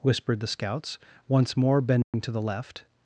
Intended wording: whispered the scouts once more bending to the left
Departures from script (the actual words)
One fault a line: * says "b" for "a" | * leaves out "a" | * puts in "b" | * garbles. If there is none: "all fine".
all fine